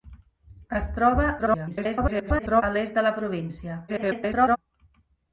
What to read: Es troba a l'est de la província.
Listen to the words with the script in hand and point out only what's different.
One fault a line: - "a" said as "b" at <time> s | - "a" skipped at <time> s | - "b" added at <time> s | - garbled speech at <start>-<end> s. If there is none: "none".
- garbled speech at 1.4-2.6 s
- garbled speech at 3.9-4.6 s